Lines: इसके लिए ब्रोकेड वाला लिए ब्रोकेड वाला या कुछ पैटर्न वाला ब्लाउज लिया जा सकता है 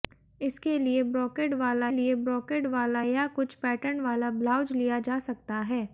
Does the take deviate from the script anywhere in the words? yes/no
no